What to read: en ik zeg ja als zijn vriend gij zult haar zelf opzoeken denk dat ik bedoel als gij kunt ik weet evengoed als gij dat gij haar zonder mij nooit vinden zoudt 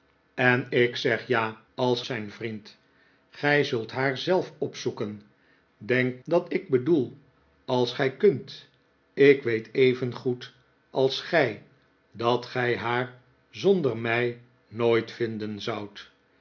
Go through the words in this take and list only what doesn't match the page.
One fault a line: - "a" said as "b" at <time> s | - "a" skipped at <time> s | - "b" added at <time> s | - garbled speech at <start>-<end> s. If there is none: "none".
none